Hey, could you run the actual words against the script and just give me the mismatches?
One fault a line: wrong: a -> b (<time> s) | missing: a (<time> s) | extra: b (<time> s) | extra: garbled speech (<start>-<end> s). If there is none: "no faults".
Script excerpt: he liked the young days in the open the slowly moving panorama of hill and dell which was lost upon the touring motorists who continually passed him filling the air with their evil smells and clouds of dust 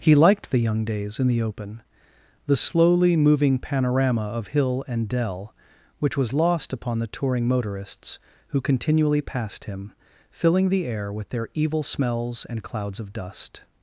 no faults